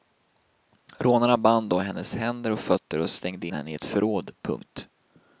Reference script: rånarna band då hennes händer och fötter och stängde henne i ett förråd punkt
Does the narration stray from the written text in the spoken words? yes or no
no